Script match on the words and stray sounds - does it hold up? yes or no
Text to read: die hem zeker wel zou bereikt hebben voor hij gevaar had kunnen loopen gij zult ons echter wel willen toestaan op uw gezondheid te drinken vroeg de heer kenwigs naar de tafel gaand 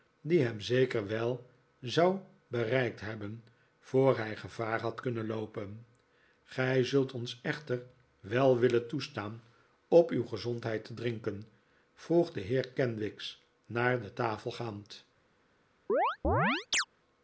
no